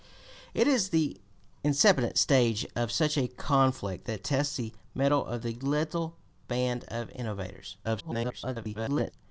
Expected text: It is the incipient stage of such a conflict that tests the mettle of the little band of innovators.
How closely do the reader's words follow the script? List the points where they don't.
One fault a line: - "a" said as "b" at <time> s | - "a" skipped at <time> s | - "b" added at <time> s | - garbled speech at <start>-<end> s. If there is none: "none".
- garbled speech at 7.8-9.1 s